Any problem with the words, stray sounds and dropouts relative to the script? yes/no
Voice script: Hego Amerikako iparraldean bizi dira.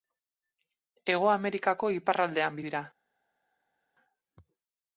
yes